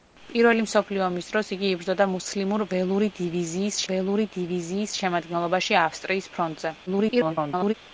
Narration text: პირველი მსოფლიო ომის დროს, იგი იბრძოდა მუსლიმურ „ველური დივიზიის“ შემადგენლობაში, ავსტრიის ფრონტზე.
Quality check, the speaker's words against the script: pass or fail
fail